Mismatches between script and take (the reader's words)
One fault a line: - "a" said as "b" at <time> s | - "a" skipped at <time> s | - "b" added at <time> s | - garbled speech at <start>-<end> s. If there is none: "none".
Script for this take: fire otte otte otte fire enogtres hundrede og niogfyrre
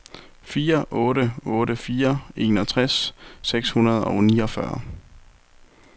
- "otte" skipped at 1.8 s
- "seks" added at 3.5 s